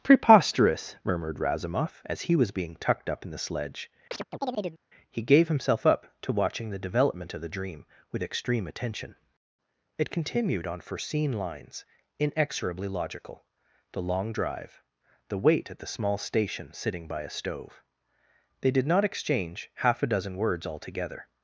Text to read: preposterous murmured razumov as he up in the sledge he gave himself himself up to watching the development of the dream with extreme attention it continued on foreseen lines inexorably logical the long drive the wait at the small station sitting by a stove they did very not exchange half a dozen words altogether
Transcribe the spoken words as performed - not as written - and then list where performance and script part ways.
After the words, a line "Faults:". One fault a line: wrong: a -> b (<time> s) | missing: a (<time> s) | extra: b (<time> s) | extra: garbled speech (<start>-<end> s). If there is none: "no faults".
preposterous murmured razumov as he was being tucked up in the sledge he gave himself up to watching the development of the dream with extreme attention it continued on foreseen lines inexorably logical the long drive the wait at the small station sitting by a stove they did not exchange half a dozen words altogether
Faults:
extra: was being tucked (2.4 s)
missing: himself (5.9 s)
missing: very (18.8 s)